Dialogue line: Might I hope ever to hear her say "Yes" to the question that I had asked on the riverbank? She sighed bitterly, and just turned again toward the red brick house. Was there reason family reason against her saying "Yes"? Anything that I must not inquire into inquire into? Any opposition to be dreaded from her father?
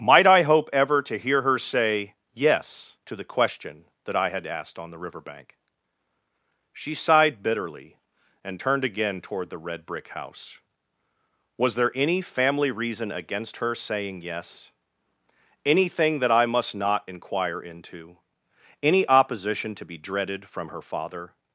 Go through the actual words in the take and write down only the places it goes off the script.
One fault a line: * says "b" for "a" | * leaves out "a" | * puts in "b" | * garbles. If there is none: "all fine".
* leaves out "just"
* says "any" for "reason"
* leaves out "inquire into"